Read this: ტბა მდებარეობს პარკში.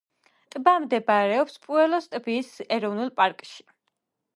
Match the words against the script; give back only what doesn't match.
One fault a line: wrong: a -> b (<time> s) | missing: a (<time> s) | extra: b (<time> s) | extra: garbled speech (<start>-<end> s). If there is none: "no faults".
extra: პუელოს ტბის ეროვნულ (1.7 s)